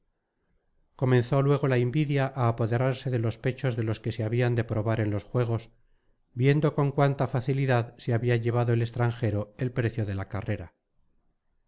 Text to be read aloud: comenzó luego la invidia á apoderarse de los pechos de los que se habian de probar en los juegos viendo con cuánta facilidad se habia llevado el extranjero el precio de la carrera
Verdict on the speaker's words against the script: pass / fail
pass